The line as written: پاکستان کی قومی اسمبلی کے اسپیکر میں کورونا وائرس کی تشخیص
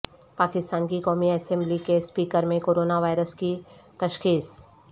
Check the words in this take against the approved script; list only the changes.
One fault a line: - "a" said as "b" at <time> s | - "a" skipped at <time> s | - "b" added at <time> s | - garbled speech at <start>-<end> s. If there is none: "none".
none